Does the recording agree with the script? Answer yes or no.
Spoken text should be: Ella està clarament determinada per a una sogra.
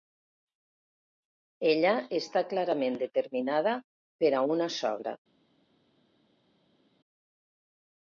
yes